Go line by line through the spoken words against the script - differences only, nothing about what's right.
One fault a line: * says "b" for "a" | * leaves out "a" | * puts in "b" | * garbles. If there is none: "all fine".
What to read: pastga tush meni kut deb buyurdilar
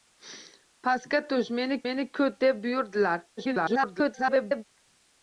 * puts in "meni"
* garbles